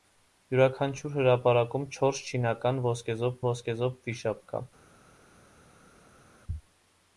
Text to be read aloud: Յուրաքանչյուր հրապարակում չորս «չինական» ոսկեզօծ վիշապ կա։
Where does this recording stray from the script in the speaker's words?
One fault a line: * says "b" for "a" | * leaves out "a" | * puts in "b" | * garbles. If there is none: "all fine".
* puts in "ոսկեզօծ"